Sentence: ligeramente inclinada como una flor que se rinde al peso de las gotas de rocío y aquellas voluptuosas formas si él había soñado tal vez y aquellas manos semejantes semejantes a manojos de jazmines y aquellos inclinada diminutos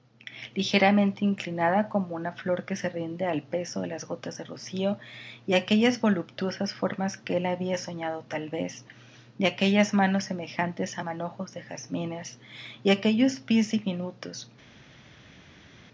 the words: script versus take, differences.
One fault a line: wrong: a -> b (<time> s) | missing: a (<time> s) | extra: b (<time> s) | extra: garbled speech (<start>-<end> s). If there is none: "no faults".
wrong: si -> que (7.2 s)
missing: semejantes (11.0 s)
wrong: inclinada -> pies (13.4 s)